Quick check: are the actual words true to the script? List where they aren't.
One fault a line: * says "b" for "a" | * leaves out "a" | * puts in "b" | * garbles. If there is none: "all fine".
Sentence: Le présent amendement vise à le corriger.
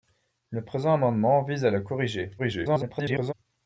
* garbles